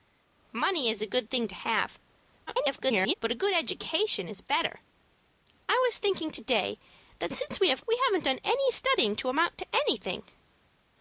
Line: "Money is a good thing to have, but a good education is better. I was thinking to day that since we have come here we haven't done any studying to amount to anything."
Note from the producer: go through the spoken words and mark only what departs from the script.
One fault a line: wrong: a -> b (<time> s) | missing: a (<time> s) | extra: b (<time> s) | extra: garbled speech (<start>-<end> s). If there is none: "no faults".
extra: garbled speech (2.5-3.1 s)
missing: come here (7.9 s)